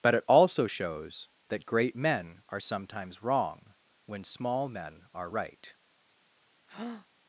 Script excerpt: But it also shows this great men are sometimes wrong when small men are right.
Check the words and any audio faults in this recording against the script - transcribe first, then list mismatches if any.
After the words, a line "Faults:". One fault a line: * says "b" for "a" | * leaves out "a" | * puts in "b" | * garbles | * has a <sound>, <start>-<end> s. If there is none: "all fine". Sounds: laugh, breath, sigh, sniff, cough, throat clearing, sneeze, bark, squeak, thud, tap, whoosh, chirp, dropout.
But it also shows that great men are sometimes wrong when small men are right.
Faults:
* says "that" for "this"
* has a breath, 6.7-7.1 s